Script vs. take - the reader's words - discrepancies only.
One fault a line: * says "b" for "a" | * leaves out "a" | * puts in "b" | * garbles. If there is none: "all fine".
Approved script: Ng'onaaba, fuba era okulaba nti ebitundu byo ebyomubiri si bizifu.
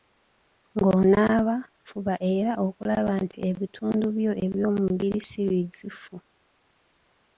all fine